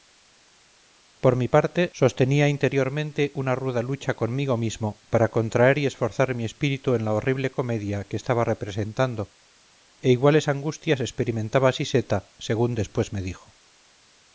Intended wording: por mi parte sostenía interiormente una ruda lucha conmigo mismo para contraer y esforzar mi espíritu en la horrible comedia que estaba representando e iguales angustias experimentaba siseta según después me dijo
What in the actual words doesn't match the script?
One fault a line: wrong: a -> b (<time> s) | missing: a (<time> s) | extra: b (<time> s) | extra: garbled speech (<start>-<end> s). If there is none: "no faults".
no faults